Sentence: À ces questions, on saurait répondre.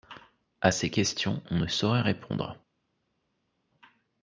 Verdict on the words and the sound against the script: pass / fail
fail